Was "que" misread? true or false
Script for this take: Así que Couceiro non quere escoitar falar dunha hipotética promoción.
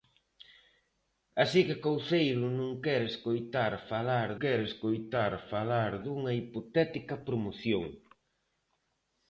false